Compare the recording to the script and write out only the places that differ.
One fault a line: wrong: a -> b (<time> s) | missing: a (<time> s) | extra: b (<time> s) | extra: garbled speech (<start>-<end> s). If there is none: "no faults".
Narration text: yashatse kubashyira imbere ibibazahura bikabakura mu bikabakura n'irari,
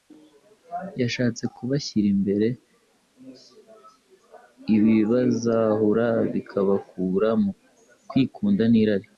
wrong: bikabakura -> kwikunda (8.1 s)